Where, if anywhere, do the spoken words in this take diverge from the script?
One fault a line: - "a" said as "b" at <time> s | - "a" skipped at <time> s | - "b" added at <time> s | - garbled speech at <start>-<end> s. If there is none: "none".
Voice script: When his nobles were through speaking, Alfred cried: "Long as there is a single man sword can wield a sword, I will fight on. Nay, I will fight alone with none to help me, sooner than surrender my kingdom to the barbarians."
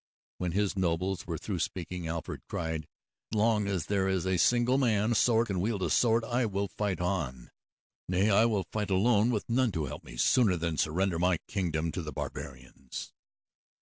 none